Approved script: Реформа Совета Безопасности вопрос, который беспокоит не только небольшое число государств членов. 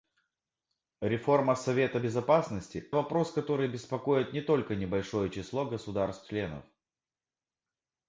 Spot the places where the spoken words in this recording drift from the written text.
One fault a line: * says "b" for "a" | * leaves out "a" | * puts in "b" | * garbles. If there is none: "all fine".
all fine